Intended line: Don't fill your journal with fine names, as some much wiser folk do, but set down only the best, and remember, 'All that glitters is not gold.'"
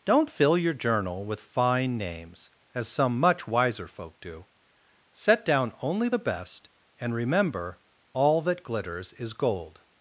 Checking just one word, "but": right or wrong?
wrong